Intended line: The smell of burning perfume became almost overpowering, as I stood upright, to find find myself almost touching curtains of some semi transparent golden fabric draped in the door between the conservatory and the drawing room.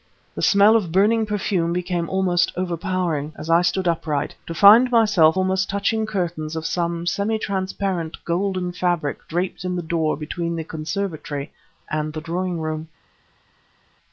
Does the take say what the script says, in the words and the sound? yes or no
no